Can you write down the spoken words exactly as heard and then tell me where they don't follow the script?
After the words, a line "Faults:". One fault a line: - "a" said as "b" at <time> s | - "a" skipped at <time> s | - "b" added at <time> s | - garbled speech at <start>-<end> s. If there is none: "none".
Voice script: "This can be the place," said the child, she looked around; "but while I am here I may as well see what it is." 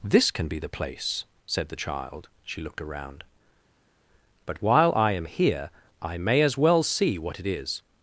"This can be the place," said the child, she looked around; "but while I am here I may as well see what it is."
Faults:
none